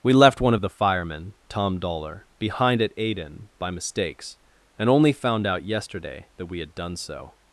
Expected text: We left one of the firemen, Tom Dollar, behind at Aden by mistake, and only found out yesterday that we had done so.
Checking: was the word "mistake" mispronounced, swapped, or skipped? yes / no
yes